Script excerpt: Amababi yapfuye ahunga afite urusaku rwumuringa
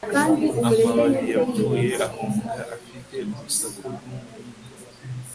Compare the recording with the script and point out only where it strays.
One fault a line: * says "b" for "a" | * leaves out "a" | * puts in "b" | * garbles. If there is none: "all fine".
all fine